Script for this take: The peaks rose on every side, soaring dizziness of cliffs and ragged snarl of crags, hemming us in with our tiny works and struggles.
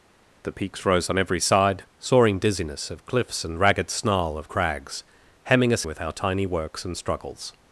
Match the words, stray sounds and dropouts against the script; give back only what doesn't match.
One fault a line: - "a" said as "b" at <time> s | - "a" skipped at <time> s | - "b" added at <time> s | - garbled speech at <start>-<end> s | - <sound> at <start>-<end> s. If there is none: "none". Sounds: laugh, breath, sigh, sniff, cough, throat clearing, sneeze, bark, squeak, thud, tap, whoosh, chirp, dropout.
- "in" skipped at 5.8 s